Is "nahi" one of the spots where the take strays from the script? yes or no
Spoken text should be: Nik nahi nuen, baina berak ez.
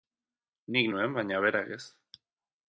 yes